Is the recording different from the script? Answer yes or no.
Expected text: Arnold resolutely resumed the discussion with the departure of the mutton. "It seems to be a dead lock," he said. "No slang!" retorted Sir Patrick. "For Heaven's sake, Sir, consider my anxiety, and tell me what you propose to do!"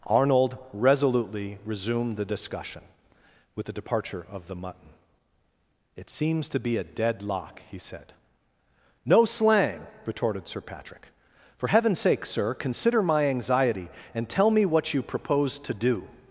no